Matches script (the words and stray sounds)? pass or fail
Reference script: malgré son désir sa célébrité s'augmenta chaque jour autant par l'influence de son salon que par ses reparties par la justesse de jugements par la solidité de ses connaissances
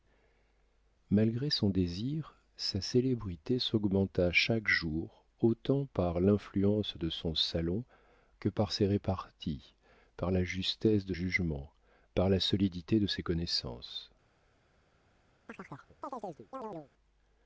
fail